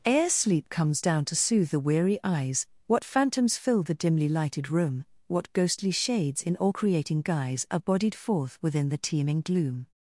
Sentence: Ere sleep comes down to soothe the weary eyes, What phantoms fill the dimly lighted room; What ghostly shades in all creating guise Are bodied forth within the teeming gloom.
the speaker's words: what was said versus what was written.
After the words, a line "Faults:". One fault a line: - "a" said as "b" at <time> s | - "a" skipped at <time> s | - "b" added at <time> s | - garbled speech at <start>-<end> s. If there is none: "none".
Ere sleep comes down to soothe the weary eyes, What phantoms fill the dimly lighted room; What ghostly shades in all creating guise Are bodied forth within the teeming gloom.
Faults:
none